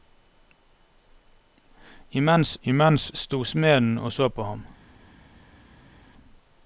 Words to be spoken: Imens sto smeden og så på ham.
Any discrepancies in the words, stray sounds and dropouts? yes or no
yes